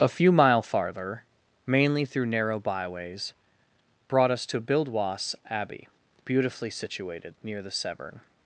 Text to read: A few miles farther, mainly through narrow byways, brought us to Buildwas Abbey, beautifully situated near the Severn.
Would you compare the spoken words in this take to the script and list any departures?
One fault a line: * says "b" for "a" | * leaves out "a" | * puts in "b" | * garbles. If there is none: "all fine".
* says "mile" for "miles"